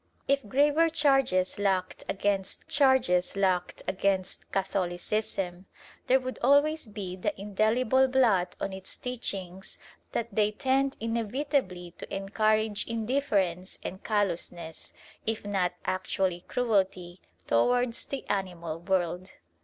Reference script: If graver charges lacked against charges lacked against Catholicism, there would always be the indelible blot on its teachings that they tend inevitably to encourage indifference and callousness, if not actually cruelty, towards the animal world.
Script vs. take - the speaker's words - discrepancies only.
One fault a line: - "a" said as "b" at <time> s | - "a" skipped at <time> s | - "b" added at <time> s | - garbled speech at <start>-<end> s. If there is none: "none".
none